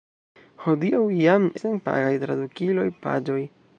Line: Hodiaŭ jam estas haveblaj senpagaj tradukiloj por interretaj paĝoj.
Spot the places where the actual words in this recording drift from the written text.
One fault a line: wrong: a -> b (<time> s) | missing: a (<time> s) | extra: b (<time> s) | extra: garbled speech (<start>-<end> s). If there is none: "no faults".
missing: estas haveblaj (1.4 s)
missing: por interretaj (2.9 s)